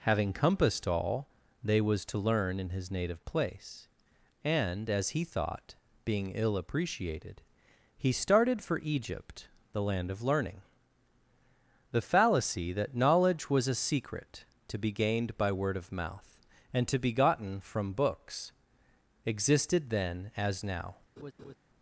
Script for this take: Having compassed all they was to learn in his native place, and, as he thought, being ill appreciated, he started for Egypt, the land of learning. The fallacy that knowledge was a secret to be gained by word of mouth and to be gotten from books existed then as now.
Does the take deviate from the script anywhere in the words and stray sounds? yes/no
yes